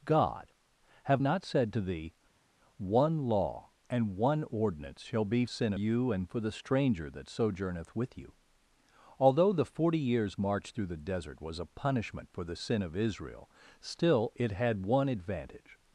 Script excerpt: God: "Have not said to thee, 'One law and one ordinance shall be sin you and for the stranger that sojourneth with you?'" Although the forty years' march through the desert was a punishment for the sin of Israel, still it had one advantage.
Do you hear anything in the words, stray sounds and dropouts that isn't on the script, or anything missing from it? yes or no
no